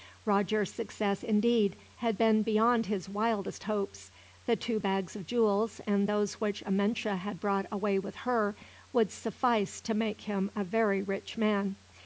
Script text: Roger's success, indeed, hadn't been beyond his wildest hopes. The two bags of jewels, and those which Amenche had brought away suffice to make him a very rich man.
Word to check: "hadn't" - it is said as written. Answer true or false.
false